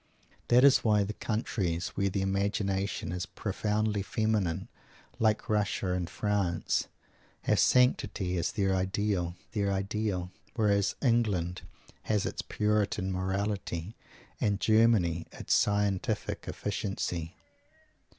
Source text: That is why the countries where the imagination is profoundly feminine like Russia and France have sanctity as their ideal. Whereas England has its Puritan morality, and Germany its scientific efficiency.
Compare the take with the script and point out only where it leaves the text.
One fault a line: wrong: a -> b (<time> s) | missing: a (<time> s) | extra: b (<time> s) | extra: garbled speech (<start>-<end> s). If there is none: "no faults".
extra: their ideal (9.5 s)